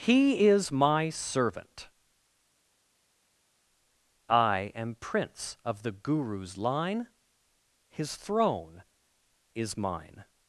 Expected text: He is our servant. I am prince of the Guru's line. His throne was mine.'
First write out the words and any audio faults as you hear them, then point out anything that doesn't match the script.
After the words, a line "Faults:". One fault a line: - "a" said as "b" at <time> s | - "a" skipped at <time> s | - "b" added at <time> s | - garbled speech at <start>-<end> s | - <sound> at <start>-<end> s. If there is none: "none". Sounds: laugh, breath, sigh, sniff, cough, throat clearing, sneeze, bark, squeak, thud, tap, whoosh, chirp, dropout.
He is my servant. I am prince of the Guru's line. His throne is mine.'
Faults:
- "our" said as "my" at 0.7 s
- "was" said as "is" at 9.5 s